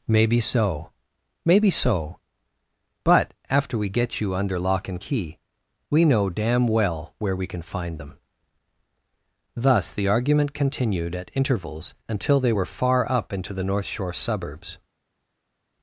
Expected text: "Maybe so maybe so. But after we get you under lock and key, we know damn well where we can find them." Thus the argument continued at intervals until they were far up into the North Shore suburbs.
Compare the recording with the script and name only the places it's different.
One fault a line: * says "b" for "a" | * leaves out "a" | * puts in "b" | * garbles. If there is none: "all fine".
all fine